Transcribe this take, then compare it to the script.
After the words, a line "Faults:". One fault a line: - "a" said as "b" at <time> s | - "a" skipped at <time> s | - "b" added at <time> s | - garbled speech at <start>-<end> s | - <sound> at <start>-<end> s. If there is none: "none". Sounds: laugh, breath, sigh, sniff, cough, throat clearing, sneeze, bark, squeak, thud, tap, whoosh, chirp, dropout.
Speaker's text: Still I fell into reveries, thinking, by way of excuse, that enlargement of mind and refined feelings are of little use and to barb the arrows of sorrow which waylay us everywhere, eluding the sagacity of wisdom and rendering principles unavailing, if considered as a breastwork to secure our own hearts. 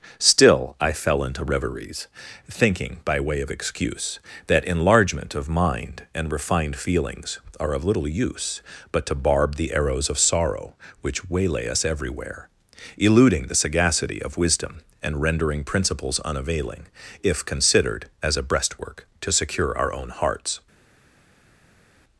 Still I fell into reveries, thinking, by way of excuse, that enlargement of mind and refined feelings are of little use but to barb the arrows of sorrow which waylay us everywhere, eluding the sagacity of wisdom and rendering principles unavailing, if considered as a breastwork to secure our own hearts.
Faults:
- "and" said as "but" at 8.9 s